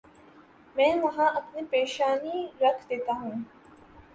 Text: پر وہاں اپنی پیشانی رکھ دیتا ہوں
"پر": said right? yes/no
no